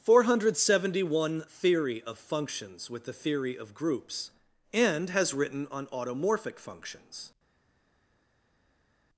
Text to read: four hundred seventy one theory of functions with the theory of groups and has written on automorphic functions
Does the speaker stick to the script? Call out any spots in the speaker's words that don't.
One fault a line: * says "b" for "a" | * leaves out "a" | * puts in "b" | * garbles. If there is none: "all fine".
all fine